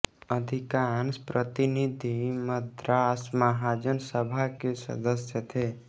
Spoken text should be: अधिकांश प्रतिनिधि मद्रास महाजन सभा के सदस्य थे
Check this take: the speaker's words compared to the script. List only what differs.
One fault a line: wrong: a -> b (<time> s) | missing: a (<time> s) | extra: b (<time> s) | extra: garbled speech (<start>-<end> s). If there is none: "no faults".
no faults